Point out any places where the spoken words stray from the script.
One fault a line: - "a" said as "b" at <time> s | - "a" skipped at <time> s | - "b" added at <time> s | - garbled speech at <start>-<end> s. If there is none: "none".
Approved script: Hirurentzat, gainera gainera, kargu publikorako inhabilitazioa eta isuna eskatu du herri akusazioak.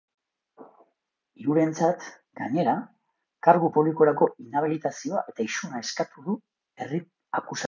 - "gainera" skipped at 2.8 s